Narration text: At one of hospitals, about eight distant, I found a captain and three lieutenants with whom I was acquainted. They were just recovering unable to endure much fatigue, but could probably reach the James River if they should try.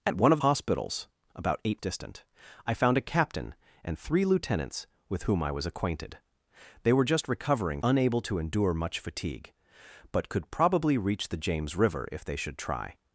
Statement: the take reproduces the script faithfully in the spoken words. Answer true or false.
true